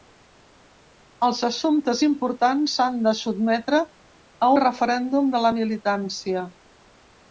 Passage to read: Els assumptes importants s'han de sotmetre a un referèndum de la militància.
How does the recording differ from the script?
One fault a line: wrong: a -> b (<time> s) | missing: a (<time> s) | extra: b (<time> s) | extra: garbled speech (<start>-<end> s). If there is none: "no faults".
missing: un (4.5 s)